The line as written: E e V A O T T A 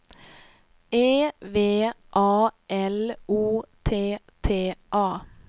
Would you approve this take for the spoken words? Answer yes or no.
no